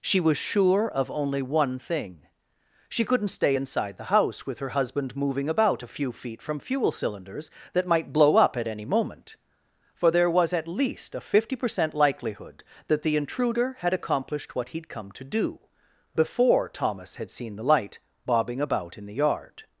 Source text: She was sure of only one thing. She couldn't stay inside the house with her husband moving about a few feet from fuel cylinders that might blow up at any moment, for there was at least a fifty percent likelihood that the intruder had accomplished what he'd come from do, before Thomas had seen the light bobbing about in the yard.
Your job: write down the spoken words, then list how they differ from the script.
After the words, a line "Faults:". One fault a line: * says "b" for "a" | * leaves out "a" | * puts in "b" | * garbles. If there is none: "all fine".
She was sure of only one thing. She couldn't stay inside the house with her husband moving about a few feet from fuel cylinders that might blow up at any moment, for there was at least a fifty percent likelihood that the intruder had accomplished what he'd come to do, before Thomas had seen the light bobbing about in the yard.
Faults:
* says "to" for "from"